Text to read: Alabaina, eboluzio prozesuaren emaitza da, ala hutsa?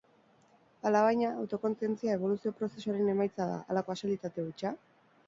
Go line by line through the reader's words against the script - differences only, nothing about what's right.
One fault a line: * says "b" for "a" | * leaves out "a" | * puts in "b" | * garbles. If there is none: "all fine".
* puts in "autokontzientzia"
* puts in "kasualitate"